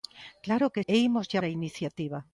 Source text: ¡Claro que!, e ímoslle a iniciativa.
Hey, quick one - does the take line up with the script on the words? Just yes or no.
yes